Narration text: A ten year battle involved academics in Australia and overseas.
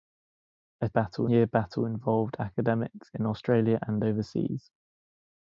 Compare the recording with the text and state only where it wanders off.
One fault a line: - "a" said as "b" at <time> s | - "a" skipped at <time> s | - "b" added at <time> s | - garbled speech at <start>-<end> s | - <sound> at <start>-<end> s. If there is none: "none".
- "ten" said as "battle" at 0.9 s